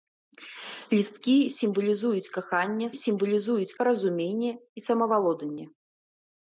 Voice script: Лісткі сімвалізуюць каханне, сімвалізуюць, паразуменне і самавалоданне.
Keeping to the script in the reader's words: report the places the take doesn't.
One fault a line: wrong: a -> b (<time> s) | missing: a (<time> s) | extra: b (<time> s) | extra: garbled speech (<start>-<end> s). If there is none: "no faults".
no faults